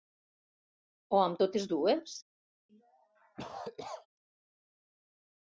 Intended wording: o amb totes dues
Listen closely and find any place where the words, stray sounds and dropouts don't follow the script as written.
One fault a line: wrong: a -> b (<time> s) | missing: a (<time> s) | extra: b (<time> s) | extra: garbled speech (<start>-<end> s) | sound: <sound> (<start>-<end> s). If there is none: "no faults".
sound: cough (2.7-4.1 s)